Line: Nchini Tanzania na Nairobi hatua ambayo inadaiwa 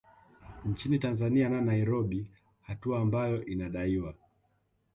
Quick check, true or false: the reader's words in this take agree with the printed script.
true